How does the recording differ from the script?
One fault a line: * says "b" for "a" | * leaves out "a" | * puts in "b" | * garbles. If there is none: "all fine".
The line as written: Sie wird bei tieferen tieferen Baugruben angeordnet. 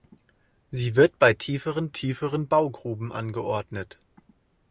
all fine